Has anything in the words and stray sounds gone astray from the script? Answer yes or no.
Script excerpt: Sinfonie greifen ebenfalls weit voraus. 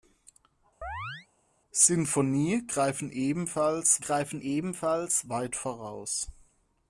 yes